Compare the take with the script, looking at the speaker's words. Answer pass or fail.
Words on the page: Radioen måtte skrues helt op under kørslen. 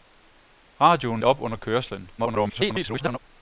fail